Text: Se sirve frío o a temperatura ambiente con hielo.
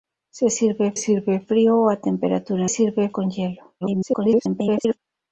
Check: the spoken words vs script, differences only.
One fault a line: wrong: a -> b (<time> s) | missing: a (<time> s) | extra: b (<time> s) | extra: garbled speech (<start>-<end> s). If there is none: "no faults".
extra: sirve (0.9 s)
wrong: ambiente -> sirve (2.7 s)
extra: garbled speech (3.8-5.0 s)